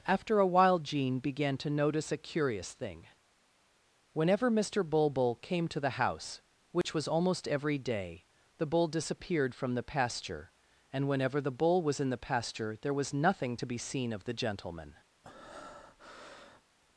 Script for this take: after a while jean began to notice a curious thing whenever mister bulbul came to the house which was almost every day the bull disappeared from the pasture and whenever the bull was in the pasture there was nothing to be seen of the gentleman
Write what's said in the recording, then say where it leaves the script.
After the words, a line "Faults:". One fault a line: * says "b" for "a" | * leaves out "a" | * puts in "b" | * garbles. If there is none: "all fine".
after a while jean began to notice a curious thing whenever mister bulbul came to the house which was almost every day the bull disappeared from the pasture and whenever the bull was in the pasture there was nothing to be seen of the gentleman
Faults:
all fine